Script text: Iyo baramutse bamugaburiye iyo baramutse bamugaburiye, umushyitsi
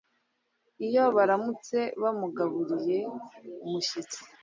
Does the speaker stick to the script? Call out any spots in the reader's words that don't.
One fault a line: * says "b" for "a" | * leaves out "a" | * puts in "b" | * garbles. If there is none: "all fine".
* leaves out "iyo baramutse bamugaburiye"